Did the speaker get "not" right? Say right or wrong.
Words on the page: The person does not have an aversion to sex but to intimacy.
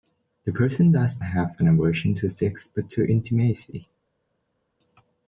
wrong